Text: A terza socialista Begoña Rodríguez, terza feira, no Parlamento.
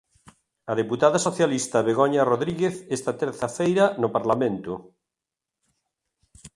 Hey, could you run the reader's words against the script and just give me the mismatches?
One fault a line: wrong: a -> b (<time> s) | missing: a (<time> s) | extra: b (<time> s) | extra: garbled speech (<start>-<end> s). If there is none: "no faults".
wrong: terza -> deputada (0.8 s)
extra: esta (3.0 s)